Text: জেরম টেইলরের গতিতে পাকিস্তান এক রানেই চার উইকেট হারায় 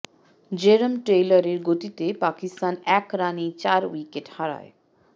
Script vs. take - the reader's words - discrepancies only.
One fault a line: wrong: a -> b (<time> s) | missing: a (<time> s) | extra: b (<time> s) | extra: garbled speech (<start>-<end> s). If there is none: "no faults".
no faults